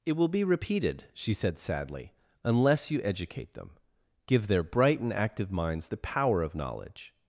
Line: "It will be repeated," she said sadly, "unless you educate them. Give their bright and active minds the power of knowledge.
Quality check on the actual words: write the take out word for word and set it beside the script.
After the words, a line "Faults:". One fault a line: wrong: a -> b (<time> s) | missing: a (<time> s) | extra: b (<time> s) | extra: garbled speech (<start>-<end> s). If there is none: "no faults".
"It will be repeated," she said sadly, "unless you educate them. Give their bright and active minds the power of knowledge.
Faults:
no faults